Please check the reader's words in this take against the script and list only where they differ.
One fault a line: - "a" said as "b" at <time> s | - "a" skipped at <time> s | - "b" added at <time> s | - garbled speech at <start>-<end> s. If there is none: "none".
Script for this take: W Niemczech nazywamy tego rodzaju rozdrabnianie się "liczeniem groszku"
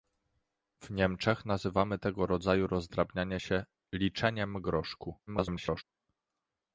- garbled speech at 5.3-5.8 s